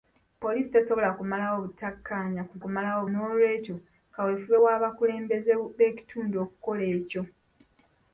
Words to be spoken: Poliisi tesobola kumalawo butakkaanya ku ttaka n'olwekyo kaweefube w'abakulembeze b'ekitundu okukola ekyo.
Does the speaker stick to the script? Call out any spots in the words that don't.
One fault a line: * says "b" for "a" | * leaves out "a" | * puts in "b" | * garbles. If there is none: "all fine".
* says "kumalawo" for "ttaka"